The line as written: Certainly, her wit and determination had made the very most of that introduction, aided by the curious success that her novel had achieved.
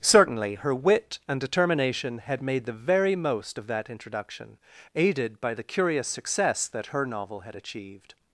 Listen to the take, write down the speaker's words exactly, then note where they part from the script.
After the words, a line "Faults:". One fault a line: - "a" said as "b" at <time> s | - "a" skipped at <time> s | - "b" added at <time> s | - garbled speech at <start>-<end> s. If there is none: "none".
Certainly, her wit and determination had made the very most of that introduction, aided by the curious success that her novel had achieved.
Faults:
none